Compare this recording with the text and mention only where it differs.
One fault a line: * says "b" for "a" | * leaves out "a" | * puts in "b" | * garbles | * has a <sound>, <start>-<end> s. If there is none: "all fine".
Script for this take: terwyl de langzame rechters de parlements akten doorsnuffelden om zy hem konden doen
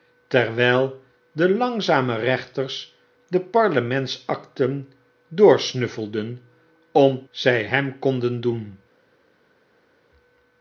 all fine